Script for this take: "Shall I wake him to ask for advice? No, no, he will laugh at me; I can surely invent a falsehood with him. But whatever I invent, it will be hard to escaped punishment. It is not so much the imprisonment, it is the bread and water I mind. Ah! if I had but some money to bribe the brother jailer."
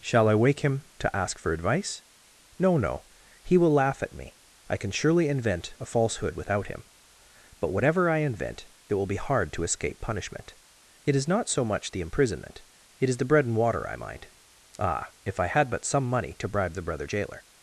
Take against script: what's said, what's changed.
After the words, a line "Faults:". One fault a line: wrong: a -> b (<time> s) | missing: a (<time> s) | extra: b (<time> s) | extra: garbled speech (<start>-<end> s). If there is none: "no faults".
"Shall I wake him to ask for advice? No, no, he will laugh at me; I can surely invent a falsehood without him. But whatever I invent, it will be hard to escape punishment. It is not so much the imprisonment, it is the bread and water I mind. Ah! if I had but some money to bribe the brother jailer."
Faults:
wrong: with -> without (6.3 s)
wrong: escaped -> escape (9.6 s)